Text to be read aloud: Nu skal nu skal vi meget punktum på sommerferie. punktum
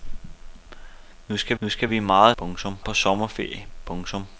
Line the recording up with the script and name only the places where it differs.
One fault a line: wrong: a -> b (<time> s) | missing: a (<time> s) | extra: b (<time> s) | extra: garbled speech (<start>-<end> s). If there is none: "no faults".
no faults